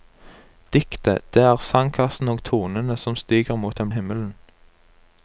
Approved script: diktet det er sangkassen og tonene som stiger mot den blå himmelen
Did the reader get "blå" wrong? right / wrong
wrong